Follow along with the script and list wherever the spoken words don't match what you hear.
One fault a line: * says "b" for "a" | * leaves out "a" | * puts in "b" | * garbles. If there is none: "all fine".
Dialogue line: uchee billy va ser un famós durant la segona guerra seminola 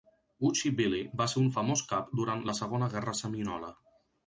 * puts in "cap"